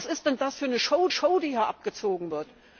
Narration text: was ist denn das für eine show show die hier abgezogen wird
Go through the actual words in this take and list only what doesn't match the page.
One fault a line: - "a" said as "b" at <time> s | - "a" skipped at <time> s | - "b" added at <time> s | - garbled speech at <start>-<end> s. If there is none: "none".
none